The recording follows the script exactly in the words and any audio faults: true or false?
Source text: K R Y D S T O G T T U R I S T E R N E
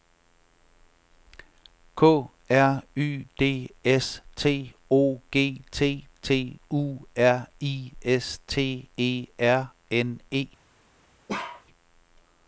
false